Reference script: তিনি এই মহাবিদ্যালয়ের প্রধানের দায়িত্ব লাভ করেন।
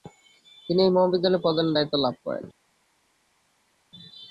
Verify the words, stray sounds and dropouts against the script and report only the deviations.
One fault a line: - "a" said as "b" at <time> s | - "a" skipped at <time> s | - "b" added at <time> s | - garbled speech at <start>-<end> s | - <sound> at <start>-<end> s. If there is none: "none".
none